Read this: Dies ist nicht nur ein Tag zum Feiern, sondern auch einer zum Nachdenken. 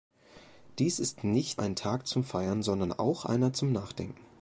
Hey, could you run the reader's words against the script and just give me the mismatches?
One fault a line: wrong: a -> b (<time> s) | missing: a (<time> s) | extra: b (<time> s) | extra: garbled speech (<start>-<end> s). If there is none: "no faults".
missing: nur (1.6 s)